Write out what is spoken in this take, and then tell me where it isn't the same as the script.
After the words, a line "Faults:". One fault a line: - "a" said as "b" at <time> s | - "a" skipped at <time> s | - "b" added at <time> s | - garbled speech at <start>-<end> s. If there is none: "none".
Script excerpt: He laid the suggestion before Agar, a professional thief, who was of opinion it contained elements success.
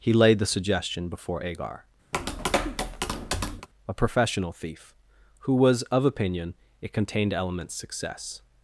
He laid the suggestion before Agar, a professional thief, who was of opinion it contained elements success.
Faults:
none